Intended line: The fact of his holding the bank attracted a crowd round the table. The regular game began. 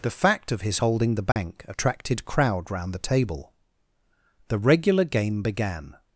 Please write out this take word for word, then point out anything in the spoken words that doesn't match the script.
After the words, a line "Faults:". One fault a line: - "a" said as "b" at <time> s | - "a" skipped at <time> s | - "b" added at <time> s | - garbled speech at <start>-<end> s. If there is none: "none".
The fact of his holding the bank attracted crowd round the table. The regular game began.
Faults:
- "a" skipped at 2.2 s